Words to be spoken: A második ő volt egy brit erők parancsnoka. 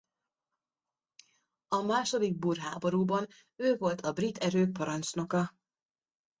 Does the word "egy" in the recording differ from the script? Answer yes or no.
yes